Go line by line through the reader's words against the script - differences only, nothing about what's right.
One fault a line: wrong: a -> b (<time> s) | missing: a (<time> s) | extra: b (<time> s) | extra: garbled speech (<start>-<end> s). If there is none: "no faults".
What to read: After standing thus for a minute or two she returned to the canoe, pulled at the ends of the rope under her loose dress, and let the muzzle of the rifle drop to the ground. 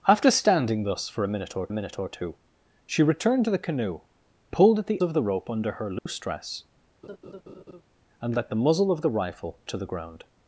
extra: minute or (1.7 s)
missing: ends (5.0 s)
missing: drop (9.6 s)